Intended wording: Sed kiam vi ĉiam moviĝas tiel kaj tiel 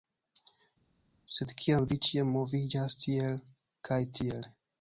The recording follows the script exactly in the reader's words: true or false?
true